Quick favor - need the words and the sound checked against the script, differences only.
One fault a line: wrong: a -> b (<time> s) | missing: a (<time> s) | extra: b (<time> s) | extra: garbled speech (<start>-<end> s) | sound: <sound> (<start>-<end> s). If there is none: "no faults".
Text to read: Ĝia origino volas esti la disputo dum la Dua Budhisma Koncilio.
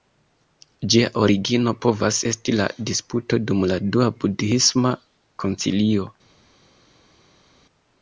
wrong: volas -> povas (1.9 s)